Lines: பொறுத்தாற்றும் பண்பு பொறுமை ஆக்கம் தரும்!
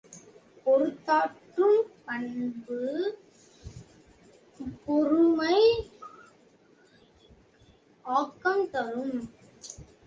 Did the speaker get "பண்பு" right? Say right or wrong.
right